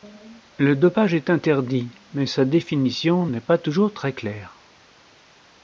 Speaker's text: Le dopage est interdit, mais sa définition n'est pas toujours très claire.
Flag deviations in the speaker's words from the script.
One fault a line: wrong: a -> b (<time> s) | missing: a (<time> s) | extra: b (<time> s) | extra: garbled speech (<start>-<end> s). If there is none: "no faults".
no faults